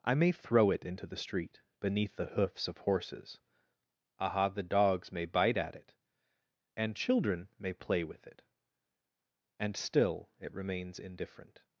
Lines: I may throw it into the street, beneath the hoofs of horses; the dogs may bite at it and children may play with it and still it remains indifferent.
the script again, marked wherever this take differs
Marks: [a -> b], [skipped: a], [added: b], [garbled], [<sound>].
I may throw it into the street, beneath the hoofs of horses; [added: aha] the dogs may bite at it and children may play with it and still it remains indifferent.